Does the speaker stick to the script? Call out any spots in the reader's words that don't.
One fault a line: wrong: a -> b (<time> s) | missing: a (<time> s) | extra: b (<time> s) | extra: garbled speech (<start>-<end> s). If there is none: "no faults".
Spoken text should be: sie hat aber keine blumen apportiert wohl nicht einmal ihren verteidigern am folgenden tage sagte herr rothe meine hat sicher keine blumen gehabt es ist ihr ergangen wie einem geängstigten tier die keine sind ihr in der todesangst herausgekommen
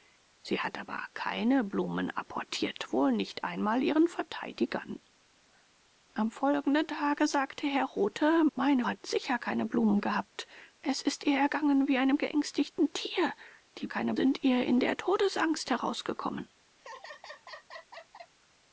no faults